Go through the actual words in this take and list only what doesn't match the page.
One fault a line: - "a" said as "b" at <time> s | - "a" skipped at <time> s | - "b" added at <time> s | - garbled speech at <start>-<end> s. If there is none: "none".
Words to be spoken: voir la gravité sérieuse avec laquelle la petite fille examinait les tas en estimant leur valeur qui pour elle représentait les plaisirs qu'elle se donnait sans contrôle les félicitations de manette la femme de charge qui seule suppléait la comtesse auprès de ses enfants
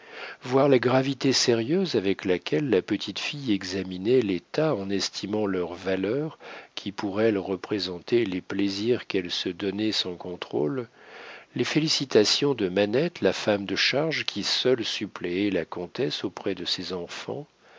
none